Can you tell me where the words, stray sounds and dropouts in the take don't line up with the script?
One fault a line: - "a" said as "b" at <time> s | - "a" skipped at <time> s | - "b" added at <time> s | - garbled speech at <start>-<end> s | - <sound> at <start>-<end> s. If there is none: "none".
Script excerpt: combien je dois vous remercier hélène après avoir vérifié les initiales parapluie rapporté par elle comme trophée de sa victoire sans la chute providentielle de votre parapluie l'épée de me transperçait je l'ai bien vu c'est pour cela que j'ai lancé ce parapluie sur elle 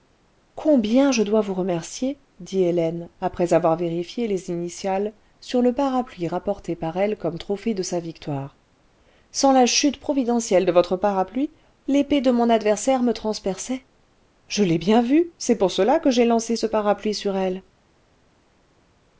- "dit" added at 2.4 s
- "sur le" added at 5.4 s
- "mon adversaire" added at 12.3 s